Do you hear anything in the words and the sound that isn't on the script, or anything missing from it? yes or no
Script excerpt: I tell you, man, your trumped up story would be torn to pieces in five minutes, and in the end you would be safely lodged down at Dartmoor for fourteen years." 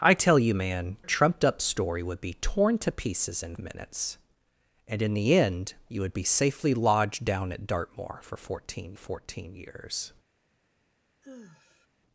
yes